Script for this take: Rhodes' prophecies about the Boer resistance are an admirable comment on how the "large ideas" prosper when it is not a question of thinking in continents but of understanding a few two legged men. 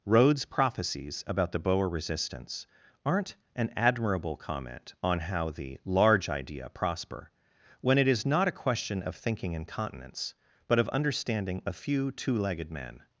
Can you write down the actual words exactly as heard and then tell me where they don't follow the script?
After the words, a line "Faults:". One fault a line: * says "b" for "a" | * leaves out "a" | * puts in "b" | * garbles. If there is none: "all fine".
Rhodes' prophecies about the Boer resistance aren't an admirable comment on how the "large idea" prosper when it is not a question of thinking in continents but of understanding a few two legged men.
Faults:
* says "aren't" for "are"
* says "idea" for "ideas"